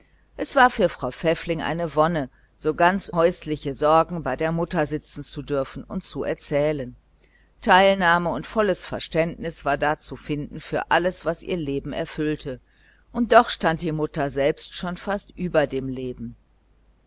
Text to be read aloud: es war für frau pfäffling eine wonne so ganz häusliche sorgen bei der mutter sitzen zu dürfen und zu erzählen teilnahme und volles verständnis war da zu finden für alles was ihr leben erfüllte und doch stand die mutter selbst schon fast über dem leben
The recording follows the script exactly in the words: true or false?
true